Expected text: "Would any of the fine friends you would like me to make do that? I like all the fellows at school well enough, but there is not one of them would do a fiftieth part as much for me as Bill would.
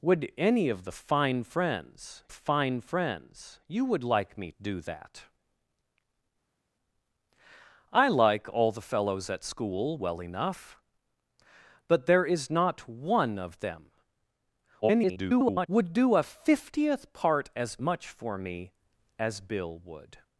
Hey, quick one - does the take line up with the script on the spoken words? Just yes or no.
no